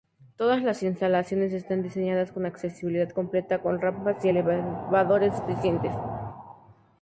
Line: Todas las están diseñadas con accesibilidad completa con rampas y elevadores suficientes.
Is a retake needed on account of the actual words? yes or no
yes